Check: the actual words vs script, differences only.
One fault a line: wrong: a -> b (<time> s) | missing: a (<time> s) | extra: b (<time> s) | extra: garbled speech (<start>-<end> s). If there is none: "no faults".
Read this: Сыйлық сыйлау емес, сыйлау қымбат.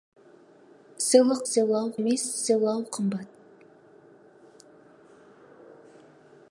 no faults